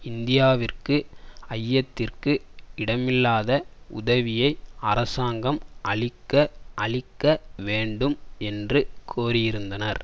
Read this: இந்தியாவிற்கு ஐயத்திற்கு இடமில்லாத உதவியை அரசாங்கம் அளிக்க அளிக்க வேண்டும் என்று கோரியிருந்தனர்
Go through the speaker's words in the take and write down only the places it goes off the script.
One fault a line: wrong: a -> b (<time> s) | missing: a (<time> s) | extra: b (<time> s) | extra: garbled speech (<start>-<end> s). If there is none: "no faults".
no faults